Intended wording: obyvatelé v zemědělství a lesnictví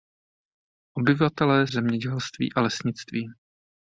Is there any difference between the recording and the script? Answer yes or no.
no